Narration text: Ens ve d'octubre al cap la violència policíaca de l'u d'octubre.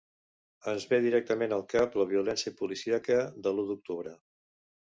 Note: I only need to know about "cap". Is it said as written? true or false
true